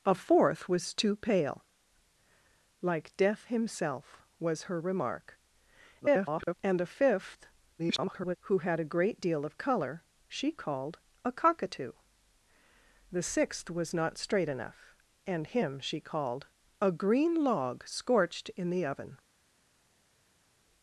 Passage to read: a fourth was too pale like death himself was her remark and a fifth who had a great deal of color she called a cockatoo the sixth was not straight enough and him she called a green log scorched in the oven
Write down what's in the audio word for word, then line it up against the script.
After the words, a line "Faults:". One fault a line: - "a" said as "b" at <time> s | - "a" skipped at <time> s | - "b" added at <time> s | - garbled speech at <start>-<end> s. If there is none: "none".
a fourth was too pale like death himself was her remark [garbled] and a fifth [garbled] who had a great deal of color she called a cockatoo the sixth was not straight enough and him she called a green log scorched in the oven
Faults:
- garbled speech at 6.0-6.5 s
- garbled speech at 7.8-8.4 s